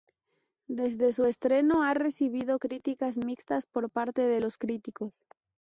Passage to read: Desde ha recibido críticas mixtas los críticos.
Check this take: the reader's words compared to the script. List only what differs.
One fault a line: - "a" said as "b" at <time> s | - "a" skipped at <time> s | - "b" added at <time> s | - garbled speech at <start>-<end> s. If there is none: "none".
- "su estreno" added at 1.1 s
- "por parte de" added at 3.7 s